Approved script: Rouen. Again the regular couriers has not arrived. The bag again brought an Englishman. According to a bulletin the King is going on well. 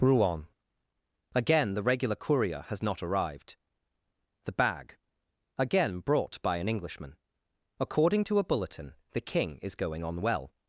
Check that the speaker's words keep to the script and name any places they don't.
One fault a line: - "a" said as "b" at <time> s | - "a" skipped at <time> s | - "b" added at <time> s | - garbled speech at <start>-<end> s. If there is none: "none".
- "couriers" said as "courier" at 2.1 s
- "by" added at 6.4 s